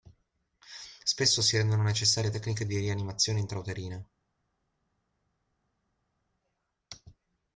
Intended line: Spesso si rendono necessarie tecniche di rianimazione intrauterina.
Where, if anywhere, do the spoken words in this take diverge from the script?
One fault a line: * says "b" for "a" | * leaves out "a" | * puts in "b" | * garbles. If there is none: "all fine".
all fine